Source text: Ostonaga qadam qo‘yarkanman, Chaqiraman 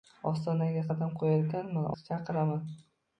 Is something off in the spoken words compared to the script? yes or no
no